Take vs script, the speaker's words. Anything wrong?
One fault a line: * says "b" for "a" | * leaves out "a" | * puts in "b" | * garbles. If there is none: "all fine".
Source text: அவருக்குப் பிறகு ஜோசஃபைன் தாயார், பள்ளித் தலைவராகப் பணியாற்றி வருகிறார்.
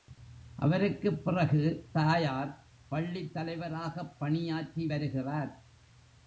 * leaves out "ஜோசஃபைன்"